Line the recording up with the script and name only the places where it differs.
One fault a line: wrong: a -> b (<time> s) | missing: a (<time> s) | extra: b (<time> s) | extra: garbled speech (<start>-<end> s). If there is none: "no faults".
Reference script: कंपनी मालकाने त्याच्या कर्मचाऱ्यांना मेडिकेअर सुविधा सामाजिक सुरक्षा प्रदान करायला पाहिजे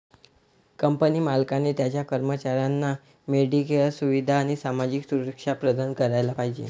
extra: आणि (4.4 s)